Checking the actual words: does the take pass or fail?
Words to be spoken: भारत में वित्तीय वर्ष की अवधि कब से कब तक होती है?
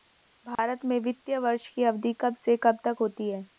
pass